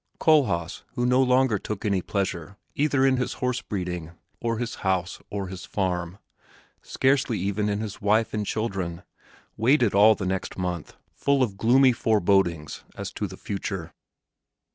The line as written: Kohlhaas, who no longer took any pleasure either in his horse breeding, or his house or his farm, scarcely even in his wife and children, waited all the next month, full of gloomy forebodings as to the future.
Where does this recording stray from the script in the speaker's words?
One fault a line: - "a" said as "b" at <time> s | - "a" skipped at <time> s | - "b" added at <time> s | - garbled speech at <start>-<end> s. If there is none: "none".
none